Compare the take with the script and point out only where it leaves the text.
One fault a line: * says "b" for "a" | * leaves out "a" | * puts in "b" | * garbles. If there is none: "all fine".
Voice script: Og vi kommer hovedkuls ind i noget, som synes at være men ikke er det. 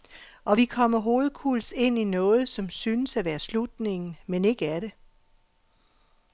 * puts in "slutningen"